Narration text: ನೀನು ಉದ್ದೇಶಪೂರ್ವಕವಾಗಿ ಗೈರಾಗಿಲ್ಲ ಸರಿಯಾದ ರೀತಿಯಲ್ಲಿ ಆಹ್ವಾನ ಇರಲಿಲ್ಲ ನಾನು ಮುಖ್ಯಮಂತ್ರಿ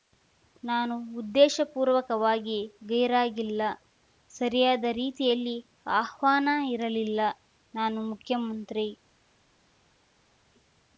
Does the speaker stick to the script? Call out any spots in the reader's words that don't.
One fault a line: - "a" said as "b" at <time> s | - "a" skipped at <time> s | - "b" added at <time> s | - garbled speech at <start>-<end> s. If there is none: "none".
- "ನೀನು" said as "ನಾನು" at 0.6 s